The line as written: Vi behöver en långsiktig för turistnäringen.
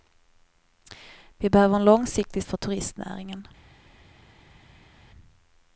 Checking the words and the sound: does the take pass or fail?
pass